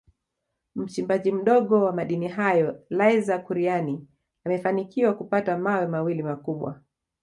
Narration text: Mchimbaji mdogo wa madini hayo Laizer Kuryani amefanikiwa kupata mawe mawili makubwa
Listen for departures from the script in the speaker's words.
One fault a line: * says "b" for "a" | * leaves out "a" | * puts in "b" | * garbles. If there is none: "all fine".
all fine